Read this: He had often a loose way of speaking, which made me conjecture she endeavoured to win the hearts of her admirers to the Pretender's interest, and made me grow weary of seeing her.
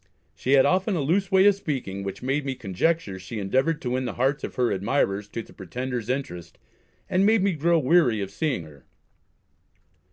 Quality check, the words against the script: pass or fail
fail